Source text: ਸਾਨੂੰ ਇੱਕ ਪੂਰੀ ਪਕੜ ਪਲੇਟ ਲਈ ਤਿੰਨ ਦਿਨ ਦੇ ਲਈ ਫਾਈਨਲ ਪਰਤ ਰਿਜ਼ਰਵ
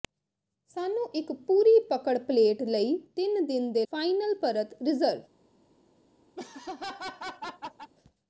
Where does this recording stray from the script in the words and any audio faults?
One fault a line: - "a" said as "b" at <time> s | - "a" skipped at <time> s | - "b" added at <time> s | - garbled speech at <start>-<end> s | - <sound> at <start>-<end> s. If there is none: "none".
- "ਲਈ" skipped at 3.9 s
- laugh at 6.4-7.9 s